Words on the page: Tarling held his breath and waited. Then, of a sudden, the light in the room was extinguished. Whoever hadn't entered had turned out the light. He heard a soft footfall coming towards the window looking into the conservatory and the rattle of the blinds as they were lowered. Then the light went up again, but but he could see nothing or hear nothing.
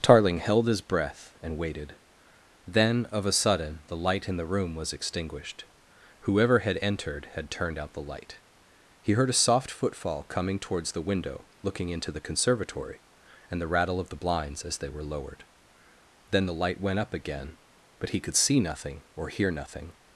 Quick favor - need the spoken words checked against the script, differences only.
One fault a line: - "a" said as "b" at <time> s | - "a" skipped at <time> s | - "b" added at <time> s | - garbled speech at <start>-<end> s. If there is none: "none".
- "hadn't" said as "had" at 6.6 s
- "but" skipped at 18.1 s